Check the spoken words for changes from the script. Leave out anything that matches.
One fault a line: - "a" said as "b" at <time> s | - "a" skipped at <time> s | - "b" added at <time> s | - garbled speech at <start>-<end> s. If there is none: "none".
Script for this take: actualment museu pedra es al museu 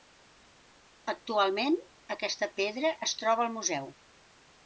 - "museu" said as "aquesta" at 2.2 s
- "troba" added at 3.2 s